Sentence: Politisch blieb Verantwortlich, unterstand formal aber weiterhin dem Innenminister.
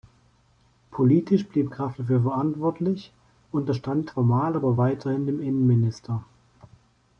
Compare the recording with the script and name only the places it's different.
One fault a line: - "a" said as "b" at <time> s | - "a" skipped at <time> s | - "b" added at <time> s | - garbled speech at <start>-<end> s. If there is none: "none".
- "Graf dafür" added at 1.7 s